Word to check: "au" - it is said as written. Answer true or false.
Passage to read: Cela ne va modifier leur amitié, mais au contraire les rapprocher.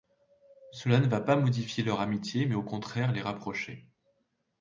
true